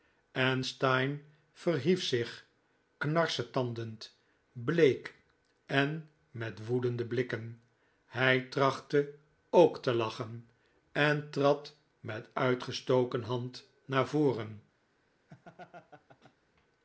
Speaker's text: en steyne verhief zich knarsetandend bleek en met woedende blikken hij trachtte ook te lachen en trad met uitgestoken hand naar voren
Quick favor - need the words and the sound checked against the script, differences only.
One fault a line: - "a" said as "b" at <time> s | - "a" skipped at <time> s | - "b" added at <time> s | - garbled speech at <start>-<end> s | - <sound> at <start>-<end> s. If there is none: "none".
- laugh at 15.3-16.4 s